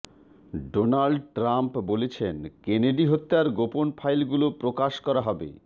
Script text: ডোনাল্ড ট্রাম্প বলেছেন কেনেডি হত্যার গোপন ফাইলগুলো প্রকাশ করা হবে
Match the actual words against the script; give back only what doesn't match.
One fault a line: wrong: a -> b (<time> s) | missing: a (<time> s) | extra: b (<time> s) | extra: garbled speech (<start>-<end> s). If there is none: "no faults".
no faults